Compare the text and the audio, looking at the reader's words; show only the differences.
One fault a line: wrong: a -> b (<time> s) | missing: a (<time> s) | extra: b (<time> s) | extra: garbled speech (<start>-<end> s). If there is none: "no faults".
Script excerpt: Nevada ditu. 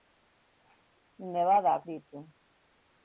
no faults